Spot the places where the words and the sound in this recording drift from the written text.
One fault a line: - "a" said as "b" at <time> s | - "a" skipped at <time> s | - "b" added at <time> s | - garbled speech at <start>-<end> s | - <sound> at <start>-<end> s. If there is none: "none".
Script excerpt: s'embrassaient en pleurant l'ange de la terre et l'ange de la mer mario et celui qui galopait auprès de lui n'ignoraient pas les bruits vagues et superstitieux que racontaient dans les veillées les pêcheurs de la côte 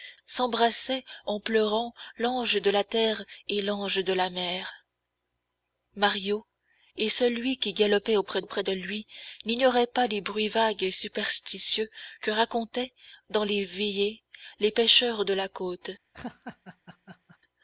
- "auprès" added at 8.4 s
- laugh at 16.1-17.4 s